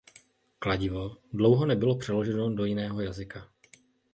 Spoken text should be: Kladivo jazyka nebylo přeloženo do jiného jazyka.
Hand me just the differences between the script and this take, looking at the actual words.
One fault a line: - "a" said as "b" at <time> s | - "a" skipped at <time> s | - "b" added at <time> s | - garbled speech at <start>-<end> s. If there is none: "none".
- "jazyka" said as "dlouho" at 1.3 s